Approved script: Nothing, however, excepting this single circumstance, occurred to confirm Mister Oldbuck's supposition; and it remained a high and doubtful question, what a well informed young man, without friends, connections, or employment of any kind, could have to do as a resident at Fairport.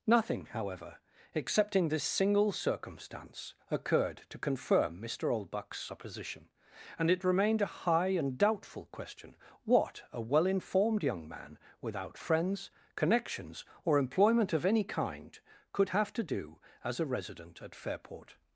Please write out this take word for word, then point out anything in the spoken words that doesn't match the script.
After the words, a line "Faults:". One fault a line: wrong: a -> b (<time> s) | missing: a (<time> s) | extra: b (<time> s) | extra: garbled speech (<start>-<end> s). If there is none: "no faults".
Nothing, however, excepting this single circumstance, occurred to confirm Mister Oldbuck's supposition; and it remained a high and doubtful question, what a well informed young man, without friends, connections, or employment of any kind, could have to do as a resident at Fairport.
Faults:
no faults